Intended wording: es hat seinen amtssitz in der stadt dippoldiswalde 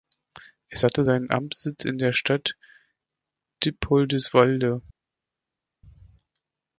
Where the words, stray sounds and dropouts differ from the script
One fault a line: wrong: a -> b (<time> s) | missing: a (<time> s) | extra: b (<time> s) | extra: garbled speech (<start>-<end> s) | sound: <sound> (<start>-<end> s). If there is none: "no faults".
wrong: hat -> hatte (0.8 s)